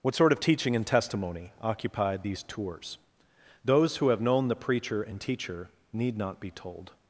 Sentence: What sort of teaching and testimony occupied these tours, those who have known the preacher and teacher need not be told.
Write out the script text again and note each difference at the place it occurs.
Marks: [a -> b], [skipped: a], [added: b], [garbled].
What sort of teaching and testimony occupied these tours, those who have known the preacher and teacher need not be told.